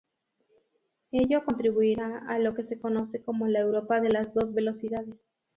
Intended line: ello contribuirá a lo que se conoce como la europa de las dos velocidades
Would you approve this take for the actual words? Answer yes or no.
yes